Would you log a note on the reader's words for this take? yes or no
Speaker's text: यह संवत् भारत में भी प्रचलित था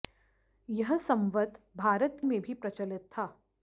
no